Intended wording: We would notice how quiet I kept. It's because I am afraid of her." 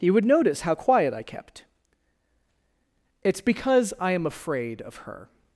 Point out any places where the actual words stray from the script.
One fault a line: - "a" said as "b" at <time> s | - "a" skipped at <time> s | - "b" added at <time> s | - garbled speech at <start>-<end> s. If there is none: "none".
- "We" said as "You" at 0.0 s